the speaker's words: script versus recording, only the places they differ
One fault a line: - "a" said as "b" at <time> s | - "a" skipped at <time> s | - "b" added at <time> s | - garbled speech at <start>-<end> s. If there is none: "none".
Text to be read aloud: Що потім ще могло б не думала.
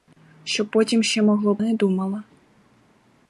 none